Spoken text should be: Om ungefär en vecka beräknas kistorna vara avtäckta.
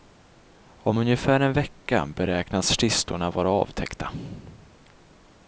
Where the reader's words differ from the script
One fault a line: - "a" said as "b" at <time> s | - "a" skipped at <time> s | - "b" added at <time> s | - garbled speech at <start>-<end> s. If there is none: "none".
none